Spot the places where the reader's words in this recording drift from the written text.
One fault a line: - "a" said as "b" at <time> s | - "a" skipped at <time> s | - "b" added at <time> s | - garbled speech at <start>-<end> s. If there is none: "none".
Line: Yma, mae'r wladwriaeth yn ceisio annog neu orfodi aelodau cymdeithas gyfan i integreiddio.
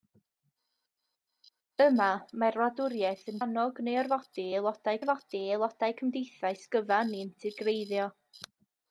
- "ceisio" skipped at 3.4 s
- "orfodi aelodau" added at 5.0 s